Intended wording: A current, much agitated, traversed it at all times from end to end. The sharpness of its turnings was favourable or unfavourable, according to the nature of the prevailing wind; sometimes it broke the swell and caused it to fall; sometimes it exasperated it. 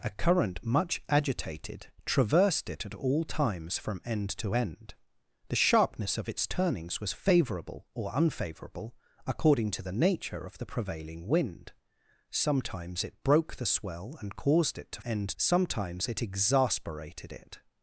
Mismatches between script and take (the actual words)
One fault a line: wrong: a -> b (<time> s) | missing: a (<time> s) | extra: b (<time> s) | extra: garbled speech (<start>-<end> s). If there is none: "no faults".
wrong: fall -> end (15.0 s)